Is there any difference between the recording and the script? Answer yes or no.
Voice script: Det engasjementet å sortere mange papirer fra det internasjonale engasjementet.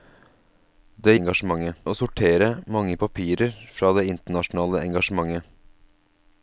no